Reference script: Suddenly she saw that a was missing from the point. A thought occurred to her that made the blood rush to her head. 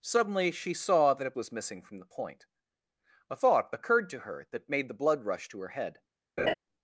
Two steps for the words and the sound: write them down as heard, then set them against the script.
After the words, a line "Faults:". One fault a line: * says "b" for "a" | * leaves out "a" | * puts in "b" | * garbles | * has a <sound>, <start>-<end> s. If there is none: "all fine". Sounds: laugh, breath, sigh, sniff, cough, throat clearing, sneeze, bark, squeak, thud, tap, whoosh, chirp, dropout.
Suddenly she saw that a was missing from the point. A thought occurred to her that made the blood rush to her head.
Faults:
* has a laugh, 6.4-6.5 s